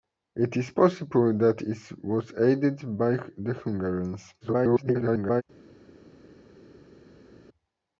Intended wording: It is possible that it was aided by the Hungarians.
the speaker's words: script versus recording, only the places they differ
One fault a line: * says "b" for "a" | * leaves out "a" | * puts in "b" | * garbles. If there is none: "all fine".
* garbles